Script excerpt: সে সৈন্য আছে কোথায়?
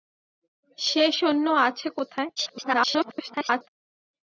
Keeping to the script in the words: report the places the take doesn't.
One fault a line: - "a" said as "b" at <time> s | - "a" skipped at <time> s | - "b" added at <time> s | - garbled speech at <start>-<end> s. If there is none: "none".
- garbled speech at 2.4-3.7 s